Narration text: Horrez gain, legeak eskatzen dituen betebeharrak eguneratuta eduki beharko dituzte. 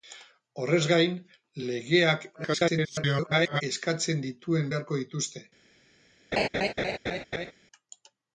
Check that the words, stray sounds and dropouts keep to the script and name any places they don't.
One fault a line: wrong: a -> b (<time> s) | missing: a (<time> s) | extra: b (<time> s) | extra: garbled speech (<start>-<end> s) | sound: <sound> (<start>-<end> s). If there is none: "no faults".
extra: garbled speech (2.3-3.6 s)
missing: betebeharrak eguneratuta eduki (4.7 s)
sound: laugh (6.3-7.5 s)